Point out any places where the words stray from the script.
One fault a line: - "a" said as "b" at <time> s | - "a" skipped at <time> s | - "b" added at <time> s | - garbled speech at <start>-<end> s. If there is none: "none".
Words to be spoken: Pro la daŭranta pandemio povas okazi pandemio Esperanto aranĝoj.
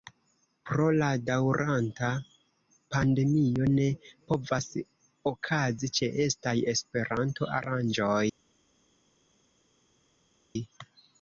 - "ne" added at 3.7 s
- "pandemio" said as "ĉeestaj" at 6.0 s